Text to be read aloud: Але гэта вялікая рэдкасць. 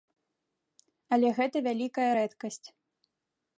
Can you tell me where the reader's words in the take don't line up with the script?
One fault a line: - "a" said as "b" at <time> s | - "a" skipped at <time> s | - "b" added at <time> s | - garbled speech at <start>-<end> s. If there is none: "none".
none